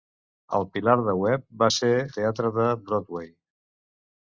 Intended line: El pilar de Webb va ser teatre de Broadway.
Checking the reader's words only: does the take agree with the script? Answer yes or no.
yes